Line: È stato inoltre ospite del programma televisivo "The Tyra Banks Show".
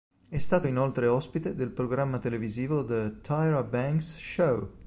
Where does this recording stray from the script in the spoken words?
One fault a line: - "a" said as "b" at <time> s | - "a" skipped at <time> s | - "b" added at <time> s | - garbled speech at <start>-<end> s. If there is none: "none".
none